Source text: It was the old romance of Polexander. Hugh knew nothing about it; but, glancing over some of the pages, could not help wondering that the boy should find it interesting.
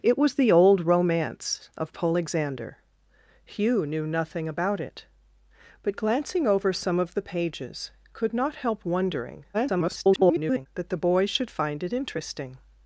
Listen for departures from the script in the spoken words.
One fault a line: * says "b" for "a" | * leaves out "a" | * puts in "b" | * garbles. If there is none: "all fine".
* garbles